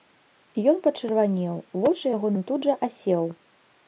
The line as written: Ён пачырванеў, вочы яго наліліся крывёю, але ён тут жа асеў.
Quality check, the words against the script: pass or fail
fail